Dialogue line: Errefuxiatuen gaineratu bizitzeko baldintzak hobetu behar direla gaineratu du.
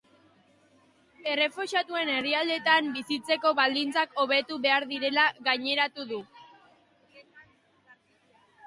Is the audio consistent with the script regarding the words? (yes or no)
no